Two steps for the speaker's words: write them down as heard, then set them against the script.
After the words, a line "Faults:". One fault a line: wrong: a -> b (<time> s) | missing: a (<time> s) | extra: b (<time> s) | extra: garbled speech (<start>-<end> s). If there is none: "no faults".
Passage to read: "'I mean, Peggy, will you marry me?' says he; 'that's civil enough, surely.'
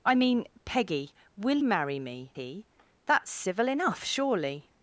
"'I mean, Peggy, will marry me?' he; 'that's civil enough, surely.'
Faults:
missing: you (1.6 s)
missing: says (2.3 s)